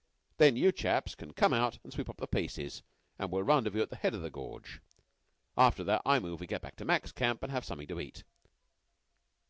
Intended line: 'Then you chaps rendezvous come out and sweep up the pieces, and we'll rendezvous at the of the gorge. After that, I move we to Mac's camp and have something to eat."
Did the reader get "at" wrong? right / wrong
right